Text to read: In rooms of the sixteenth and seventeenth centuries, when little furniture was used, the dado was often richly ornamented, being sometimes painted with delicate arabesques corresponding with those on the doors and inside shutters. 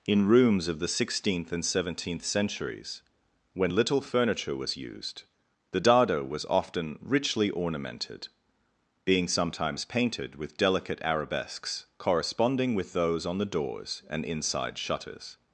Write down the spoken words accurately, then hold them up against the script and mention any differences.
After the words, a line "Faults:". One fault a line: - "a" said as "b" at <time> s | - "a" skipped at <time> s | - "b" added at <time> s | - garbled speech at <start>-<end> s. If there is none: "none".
In rooms of the sixteenth and seventeenth centuries, when little furniture was used, the dado was often richly ornamented, being sometimes painted with delicate arabesques corresponding with those on the doors and inside shutters.
Faults:
none